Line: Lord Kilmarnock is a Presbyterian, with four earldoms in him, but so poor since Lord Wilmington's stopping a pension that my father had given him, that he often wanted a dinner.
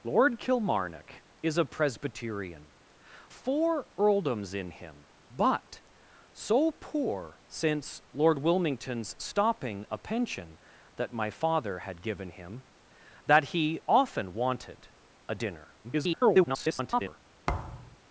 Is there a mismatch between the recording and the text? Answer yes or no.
yes